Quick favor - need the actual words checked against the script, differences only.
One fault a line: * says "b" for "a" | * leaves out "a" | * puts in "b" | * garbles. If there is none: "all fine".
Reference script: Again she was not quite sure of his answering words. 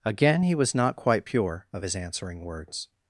* says "he" for "she"
* says "pure" for "sure"